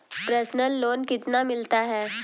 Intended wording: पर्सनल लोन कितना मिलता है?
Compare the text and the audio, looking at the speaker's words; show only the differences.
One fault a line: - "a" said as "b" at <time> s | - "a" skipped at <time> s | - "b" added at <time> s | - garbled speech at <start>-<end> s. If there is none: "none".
none